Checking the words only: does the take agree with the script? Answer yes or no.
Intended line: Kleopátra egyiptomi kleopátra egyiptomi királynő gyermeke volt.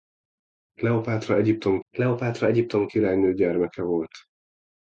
yes